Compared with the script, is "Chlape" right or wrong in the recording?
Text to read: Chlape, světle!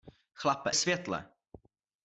right